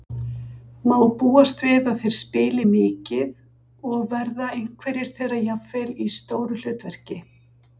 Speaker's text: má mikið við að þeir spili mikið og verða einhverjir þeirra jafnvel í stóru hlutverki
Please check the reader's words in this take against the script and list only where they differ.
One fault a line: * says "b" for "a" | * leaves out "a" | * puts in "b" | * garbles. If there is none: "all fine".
* says "búast" for "mikið"